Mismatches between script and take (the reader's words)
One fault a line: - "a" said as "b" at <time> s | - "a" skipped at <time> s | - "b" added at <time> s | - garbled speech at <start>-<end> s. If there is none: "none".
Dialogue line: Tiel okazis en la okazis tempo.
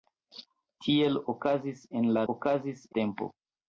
none